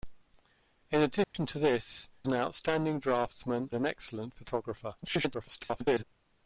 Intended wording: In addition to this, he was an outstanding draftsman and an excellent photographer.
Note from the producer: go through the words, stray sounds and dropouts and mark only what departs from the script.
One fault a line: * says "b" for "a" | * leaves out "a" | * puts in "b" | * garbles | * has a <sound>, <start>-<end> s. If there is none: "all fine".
* has a dropout, 1.2-1.3 s
* leaves out "he was"
* leaves out "and"
* garbles